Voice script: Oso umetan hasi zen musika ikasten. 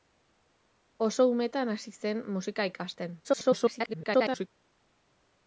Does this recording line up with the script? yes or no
no